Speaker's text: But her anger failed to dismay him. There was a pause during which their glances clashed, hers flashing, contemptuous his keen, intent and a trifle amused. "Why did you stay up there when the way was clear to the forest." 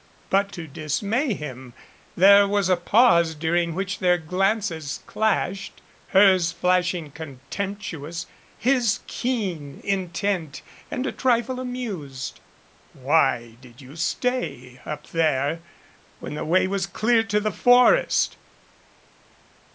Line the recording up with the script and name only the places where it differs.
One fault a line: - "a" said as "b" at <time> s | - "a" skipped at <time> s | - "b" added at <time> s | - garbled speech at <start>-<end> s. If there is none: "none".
- "her anger failed" skipped at 0.5 s